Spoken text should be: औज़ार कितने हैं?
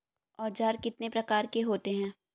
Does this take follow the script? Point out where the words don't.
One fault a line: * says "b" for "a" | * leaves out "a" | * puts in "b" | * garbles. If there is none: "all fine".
* puts in "प्रकार के होते"